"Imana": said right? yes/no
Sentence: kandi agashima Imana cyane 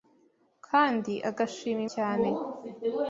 no